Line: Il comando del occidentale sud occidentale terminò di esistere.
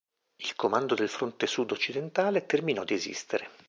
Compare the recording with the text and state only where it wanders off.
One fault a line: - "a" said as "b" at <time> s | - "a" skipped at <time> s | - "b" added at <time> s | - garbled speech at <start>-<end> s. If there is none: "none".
- "occidentale" said as "fronte" at 1.1 s